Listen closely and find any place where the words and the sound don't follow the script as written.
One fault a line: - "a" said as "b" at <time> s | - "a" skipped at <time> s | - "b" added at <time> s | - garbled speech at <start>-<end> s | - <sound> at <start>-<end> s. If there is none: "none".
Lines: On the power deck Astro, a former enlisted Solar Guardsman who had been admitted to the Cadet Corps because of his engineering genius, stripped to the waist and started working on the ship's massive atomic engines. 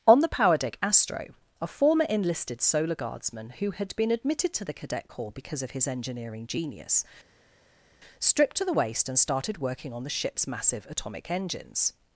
none